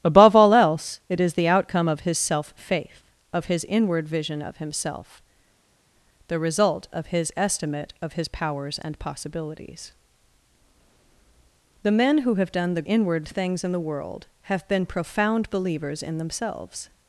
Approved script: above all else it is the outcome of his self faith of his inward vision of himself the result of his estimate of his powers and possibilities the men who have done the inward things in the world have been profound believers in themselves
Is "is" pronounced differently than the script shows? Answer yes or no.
no